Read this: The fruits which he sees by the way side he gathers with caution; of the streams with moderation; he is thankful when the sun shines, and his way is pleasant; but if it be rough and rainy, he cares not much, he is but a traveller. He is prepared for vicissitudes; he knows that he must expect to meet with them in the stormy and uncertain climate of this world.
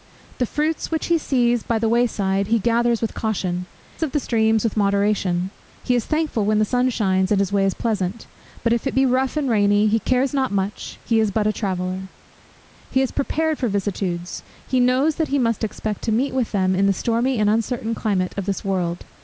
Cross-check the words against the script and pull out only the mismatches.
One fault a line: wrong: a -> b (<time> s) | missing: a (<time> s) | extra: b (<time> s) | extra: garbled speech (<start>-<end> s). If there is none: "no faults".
no faults